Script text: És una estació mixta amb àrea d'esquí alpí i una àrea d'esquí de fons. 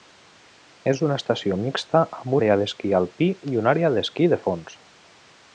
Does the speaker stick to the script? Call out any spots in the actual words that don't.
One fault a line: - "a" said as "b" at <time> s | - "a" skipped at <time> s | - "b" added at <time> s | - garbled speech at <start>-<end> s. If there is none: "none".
none